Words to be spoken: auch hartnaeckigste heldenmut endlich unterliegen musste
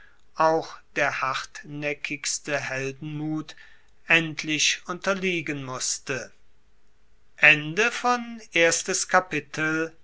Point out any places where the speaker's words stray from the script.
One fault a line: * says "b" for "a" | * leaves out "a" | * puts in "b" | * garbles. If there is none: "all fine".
* puts in "der"